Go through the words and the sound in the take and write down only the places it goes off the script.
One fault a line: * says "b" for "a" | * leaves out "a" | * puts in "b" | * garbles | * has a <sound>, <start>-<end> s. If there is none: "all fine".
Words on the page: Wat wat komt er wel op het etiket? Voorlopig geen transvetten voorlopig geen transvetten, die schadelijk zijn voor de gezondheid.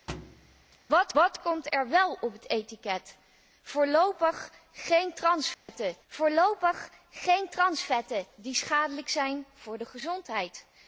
* has a thud, 0.1-0.8 s
* has a dropout, 5.5-5.7 s